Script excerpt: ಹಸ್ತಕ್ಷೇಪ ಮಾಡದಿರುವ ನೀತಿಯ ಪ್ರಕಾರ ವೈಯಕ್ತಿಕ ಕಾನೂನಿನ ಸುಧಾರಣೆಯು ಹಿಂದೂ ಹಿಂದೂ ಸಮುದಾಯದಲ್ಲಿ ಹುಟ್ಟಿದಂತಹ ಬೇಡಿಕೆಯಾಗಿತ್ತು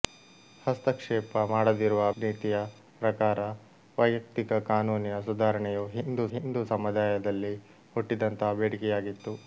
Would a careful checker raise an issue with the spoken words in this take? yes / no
no